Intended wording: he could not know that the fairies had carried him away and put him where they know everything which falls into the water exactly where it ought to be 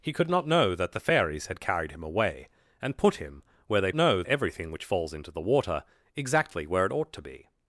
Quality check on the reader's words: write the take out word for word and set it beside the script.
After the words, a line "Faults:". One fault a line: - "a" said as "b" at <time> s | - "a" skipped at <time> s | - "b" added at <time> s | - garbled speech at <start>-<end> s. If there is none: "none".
he could not know that the fairies had carried him away and put him where they know everything which falls into the water exactly where it ought to be
Faults:
none